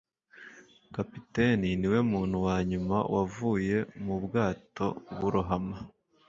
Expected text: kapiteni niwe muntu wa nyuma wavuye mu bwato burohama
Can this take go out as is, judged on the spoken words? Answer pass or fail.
pass